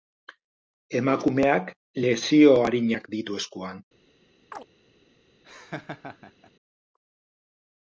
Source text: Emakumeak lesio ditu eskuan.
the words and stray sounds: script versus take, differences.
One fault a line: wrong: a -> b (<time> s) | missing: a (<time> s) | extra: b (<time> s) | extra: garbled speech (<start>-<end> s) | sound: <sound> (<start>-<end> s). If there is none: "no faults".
extra: arinak (2.7 s)
sound: chirp (4.5-4.7 s)
sound: laugh (5.4-6.5 s)